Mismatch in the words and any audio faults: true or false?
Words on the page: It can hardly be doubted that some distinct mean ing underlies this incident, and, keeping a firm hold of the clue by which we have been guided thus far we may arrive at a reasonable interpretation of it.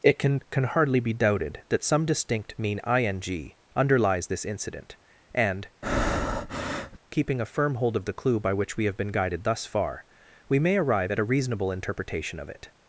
true